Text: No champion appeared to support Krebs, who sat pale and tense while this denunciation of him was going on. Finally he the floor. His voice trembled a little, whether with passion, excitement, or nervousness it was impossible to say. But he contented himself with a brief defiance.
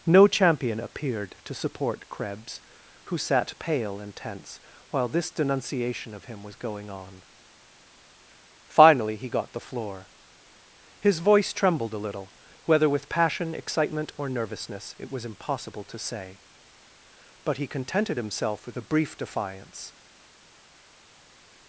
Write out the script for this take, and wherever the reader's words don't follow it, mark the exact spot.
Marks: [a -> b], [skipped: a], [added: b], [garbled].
No champion appeared to support Krebs, who sat pale and tense while this denunciation of him was going on. Finally he [added: got] the floor. His voice trembled a little, whether with passion, excitement, or nervousness it was impossible to say. But he contented himself with a brief defiance.